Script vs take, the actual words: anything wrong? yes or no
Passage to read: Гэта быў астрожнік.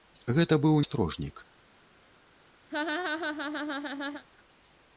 no